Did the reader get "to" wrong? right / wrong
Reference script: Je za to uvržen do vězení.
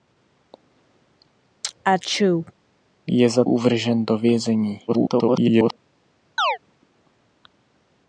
wrong